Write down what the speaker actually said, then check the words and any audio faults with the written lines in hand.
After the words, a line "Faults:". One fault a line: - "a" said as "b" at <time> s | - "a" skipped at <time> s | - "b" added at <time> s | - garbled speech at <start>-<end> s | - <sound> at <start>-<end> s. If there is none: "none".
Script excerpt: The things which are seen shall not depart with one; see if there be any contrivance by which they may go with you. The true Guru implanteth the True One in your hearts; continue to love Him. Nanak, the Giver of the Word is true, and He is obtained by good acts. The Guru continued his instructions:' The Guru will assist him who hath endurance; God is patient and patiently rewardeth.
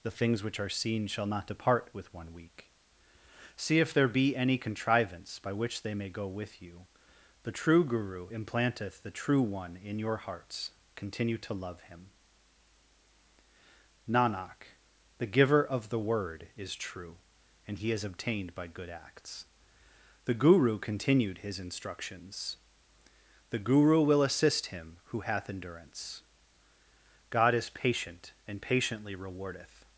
The things which are seen shall not depart with one; week see if there be any contrivance by which they may go with you. The true Guru implanteth the True One in your hearts; continue to love Him. Nanak, the Giver of the Word is true, and He is obtained by good acts. The Guru continued his instructions:' The Guru will assist him who hath endurance; God is patient and patiently rewardeth.
Faults:
- "week" added at 2.3 s